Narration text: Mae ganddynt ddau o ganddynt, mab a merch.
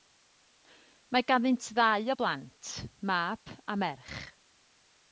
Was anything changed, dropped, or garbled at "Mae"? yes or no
no